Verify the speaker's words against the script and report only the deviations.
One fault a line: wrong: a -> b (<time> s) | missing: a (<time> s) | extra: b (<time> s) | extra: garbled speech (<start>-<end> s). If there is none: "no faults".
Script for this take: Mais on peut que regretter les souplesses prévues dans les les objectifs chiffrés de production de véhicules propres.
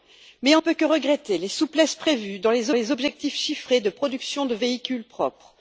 no faults